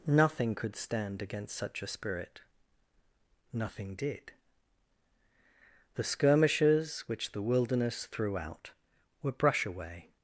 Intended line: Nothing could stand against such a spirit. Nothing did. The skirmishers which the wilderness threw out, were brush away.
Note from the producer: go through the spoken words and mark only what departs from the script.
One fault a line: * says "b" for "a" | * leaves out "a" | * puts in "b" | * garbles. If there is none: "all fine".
all fine